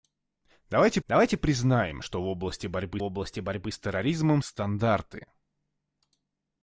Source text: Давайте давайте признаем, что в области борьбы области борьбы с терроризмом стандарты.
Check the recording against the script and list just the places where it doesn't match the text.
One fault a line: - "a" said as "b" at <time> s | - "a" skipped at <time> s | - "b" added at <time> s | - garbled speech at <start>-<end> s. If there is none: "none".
none